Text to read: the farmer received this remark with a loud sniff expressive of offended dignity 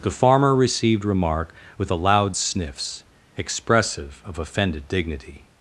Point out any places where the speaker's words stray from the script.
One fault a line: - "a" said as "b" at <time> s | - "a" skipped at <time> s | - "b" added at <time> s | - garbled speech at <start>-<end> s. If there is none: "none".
- "this" skipped at 1.1 s
- "sniff" said as "sniffs" at 2.3 s